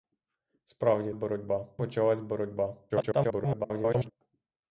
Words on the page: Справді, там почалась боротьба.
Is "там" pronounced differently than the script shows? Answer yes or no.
yes